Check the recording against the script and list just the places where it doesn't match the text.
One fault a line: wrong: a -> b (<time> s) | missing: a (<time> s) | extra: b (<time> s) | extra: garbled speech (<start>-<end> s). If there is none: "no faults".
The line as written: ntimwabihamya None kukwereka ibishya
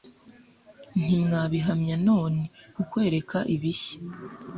no faults